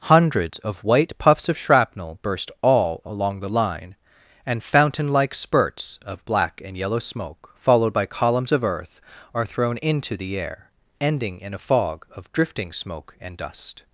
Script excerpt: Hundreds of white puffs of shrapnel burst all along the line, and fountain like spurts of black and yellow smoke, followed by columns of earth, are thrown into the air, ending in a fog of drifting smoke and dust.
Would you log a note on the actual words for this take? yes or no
no